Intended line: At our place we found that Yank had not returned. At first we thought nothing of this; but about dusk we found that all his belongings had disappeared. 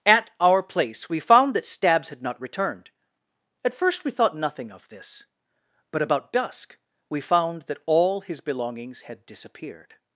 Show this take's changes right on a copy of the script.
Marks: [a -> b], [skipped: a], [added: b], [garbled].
At our place we found that [Yank -> Stabs] had not returned. At first we thought nothing of this; but about dusk we found that all his belongings had disappeared.